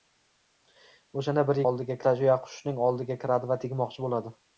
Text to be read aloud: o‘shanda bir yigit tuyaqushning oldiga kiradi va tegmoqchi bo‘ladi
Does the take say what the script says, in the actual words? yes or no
no